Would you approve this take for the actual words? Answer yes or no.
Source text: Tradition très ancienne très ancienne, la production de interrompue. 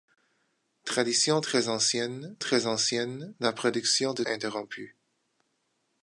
yes